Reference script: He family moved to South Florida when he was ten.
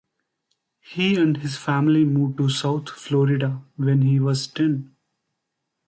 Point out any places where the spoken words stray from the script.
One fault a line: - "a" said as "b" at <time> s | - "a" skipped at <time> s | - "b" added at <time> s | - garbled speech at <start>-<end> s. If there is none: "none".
- "and his" added at 1.1 s